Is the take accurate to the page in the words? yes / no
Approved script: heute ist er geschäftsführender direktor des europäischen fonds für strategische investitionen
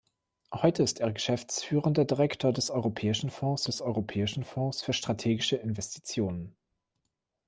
no